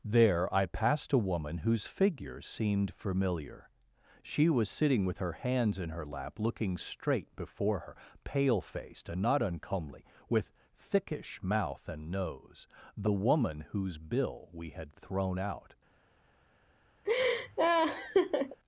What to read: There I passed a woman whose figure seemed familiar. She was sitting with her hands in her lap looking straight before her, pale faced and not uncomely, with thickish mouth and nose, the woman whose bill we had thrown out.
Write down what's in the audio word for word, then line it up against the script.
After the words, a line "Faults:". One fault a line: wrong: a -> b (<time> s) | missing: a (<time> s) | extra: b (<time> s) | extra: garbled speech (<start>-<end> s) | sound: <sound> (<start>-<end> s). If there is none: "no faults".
There I passed a woman whose figure seemed familiar. She was sitting with her hands in her lap looking straight before her, pale faced and not uncomely, with thickish mouth and nose, the woman whose bill we had thrown out.
Faults:
sound: laugh (17.0-18.6 s)